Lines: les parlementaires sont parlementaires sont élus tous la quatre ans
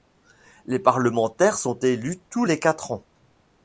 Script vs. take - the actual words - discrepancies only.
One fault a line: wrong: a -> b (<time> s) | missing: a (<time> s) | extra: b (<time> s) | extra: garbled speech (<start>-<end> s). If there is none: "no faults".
missing: parlementaires sont (1.8 s)
wrong: la -> les (2.4 s)